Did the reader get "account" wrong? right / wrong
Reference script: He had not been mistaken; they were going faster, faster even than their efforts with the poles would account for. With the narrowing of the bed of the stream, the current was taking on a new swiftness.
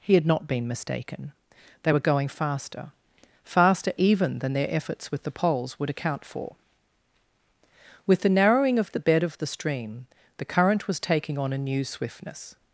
right